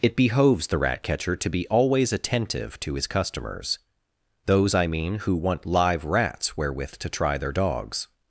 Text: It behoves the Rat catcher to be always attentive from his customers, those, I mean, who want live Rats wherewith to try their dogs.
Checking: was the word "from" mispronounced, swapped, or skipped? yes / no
yes